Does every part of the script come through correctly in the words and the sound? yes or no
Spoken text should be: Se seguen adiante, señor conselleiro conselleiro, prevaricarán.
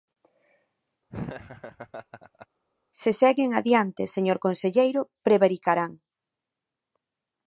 no